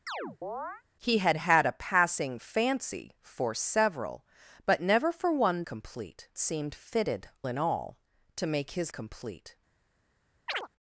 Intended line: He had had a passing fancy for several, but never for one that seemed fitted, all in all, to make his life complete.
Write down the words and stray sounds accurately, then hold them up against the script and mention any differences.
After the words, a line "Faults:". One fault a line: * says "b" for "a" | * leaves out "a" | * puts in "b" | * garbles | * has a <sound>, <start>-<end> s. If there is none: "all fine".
He had had a passing fancy for several, but never for one complete seemed fitted, in all, to make his complete.
Faults:
* has a chirp, 0.1-0.8 s
* says "complete" for "that"
* leaves out "all"
* leaves out "life"
* has a chirp, 10.5-10.7 s